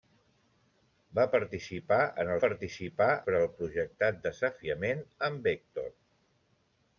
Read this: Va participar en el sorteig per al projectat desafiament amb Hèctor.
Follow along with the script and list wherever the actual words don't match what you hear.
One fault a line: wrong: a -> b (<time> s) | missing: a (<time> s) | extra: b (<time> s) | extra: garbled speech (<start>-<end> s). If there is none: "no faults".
wrong: sorteig -> participar (2.4 s)